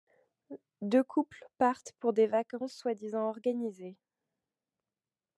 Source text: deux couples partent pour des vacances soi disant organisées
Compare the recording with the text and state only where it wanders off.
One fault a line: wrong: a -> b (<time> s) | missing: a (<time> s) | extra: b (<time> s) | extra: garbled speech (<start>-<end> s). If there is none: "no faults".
no faults